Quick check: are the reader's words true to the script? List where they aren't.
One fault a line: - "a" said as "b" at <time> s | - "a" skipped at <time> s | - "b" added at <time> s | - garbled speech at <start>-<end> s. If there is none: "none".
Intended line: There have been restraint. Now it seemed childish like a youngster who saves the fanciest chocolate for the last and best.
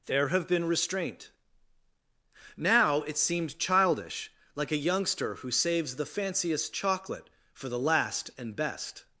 none